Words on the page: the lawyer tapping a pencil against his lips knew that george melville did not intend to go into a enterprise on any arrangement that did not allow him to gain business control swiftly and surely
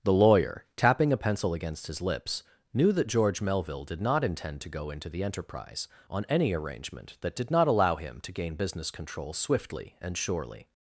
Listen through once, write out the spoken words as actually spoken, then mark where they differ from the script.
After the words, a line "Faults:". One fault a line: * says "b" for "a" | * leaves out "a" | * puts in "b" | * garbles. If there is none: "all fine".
the lawyer tapping a pencil against his lips knew that george melville did not intend to go into the enterprise on any arrangement that did not allow him to gain business control swiftly and surely
Faults:
* says "the" for "a"